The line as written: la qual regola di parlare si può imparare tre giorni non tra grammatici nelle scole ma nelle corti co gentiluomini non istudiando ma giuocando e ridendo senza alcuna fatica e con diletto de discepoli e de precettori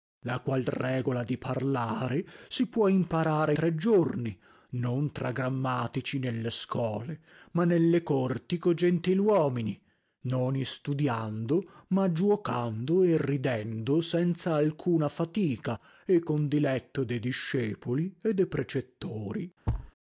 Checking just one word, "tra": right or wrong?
right